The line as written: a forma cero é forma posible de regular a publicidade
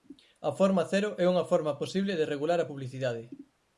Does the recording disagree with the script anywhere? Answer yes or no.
yes